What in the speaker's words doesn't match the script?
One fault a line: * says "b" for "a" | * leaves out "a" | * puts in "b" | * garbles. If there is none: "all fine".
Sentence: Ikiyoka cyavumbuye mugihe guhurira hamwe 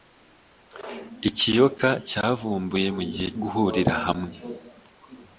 all fine